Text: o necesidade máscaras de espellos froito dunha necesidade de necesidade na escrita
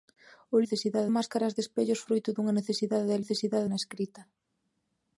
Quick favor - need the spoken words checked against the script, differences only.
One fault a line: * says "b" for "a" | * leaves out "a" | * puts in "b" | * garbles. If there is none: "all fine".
all fine